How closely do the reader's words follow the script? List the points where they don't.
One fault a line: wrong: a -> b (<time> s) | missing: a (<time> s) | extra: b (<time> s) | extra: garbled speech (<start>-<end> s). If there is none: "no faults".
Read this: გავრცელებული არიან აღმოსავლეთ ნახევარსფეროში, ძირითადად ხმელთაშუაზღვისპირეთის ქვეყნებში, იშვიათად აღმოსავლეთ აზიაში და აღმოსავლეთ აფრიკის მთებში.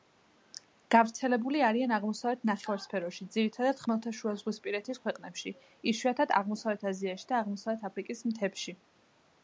no faults